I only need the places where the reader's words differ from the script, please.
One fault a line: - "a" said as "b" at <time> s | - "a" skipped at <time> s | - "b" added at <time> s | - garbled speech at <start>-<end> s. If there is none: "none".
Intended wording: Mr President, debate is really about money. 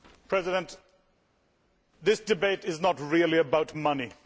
- "this" added at 2.0 s
- "not" added at 2.8 s